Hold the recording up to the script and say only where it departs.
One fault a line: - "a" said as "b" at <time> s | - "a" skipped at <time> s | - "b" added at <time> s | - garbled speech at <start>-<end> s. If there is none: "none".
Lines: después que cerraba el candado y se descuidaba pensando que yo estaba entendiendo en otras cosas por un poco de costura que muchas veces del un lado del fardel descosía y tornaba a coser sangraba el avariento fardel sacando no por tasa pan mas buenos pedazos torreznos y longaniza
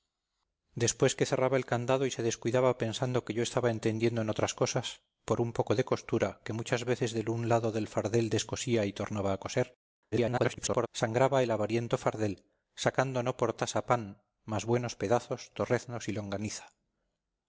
- garbled speech at 10.1-10.9 s